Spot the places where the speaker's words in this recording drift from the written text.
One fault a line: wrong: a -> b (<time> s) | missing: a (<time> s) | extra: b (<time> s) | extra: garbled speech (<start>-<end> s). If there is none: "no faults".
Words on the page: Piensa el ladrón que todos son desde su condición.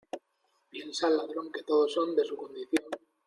wrong: desde -> de (2.1 s)